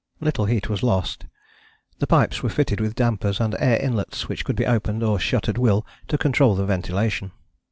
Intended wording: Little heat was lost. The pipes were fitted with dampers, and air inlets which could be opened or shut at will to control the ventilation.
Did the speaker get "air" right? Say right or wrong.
right